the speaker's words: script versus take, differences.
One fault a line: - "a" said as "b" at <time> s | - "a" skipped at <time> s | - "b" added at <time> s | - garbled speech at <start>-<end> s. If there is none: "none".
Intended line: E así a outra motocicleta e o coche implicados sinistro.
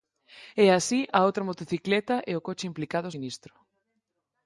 none